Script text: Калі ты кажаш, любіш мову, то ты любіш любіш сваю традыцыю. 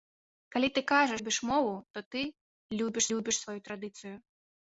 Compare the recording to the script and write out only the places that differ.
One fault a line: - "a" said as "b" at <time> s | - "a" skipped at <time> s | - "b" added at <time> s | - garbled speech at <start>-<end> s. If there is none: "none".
none